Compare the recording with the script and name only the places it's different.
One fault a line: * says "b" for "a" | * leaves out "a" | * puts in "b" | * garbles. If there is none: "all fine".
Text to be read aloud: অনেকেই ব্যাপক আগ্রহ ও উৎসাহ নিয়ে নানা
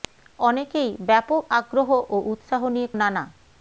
all fine